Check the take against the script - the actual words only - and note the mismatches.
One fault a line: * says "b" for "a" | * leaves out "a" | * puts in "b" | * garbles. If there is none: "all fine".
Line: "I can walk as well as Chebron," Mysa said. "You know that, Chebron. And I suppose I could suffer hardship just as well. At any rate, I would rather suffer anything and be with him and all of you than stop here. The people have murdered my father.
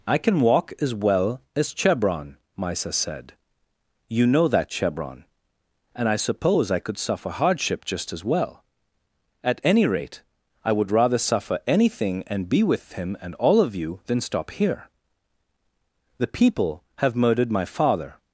all fine